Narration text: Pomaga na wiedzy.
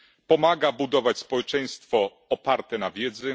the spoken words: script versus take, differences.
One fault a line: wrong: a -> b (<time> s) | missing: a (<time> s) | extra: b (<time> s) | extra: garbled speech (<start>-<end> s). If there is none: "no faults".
extra: budować społeczeństwo oparte (0.7 s)